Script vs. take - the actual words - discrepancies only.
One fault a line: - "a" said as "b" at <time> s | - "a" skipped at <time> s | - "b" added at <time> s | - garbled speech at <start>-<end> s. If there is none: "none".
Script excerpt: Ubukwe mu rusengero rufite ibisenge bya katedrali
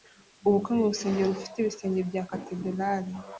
none